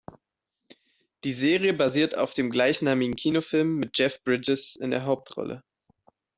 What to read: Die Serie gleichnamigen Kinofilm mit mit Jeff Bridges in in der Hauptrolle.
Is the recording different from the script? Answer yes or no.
yes